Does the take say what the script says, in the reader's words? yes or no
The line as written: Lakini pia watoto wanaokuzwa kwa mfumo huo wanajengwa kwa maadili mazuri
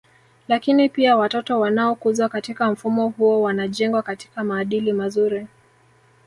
no